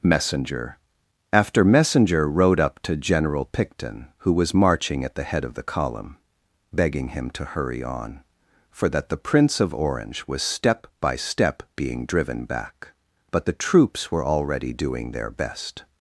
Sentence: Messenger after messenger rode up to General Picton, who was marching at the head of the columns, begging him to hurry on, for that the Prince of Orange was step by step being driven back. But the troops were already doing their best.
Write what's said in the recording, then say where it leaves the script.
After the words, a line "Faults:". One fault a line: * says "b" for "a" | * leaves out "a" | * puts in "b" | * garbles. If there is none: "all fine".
Messenger after messenger rode up to General Picton, who was marching at the head of the column, begging him to hurry on, for that the Prince of Orange was step by step being driven back. But the troops were already doing their best.
Faults:
* says "column" for "columns"